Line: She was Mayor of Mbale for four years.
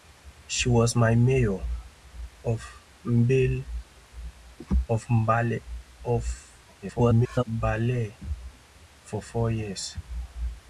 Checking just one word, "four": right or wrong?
right